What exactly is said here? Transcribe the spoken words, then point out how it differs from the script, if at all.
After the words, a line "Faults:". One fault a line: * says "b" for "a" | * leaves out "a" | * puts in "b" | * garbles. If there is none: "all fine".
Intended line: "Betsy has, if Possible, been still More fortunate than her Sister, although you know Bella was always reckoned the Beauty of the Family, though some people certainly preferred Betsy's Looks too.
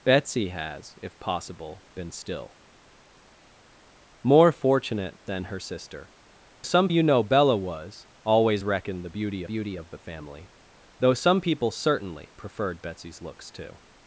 "Betsy has, if Possible, been still More fortunate than her Sister, some you know Bella was always reckoned the Beauty Beauty of the Family, though some people certainly preferred Betsy's Looks too.
Faults:
* says "some" for "although"
* puts in "Beauty"